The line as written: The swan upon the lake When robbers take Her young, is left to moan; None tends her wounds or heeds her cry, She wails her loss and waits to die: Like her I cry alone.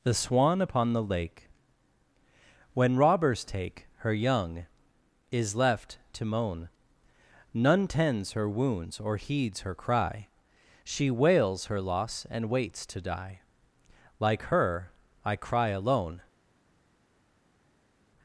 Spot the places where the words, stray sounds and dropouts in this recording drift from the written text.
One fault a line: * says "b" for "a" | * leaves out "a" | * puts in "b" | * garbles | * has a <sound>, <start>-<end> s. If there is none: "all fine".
all fine